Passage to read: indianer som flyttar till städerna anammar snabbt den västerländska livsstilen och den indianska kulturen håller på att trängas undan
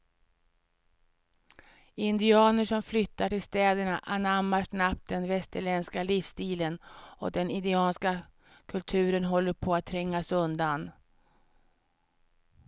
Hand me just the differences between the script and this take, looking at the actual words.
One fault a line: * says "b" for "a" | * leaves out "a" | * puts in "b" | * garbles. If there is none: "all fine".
all fine